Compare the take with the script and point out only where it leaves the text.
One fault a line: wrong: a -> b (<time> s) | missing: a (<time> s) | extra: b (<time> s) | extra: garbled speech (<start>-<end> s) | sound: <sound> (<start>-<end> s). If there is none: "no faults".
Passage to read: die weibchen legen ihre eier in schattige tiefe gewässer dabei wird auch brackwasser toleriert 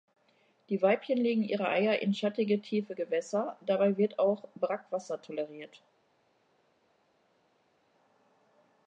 no faults